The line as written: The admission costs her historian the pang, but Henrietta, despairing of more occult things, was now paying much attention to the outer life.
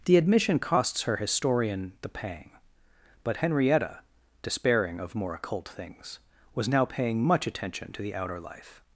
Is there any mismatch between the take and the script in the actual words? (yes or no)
no